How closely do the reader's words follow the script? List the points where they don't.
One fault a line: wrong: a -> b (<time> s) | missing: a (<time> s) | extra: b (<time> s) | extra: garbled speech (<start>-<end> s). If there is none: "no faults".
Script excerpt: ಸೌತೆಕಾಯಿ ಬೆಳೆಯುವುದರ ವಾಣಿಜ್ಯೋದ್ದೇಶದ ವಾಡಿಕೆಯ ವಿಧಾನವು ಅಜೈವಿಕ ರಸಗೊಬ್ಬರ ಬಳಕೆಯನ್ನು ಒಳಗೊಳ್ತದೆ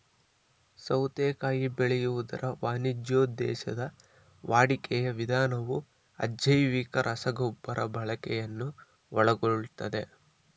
no faults